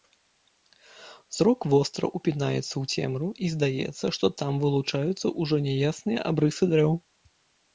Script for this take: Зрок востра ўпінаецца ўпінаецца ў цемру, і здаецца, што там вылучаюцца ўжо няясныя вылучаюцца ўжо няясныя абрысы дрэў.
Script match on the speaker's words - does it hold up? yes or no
no